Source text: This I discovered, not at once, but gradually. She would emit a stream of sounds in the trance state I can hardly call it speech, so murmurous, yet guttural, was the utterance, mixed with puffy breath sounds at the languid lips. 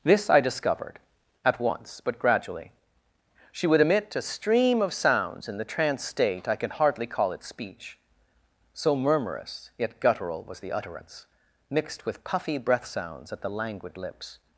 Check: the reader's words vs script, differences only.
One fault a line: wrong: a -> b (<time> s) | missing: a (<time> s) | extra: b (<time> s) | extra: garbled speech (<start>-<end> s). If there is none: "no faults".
missing: not (1.0 s)